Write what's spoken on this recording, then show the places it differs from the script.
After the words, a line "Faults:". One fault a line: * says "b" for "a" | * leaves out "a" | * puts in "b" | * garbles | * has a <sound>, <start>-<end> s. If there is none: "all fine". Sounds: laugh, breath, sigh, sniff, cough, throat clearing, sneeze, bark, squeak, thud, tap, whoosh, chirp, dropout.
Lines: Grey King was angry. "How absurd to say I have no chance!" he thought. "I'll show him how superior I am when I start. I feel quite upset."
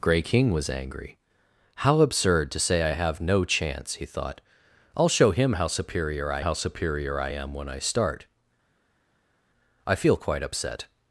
Grey King was angry. "How absurd to say I have no chance!" he thought. "I'll show him how superior I how superior I am when I start. I feel quite upset."
Faults:
* puts in "how superior I"